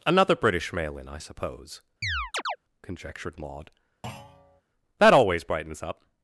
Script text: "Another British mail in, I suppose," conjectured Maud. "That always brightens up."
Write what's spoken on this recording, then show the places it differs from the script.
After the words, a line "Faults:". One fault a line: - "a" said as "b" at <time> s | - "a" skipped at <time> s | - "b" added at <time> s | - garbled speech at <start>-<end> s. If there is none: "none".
"Another British mail in, I suppose," conjectured Maud. "That always brightens up."
Faults:
none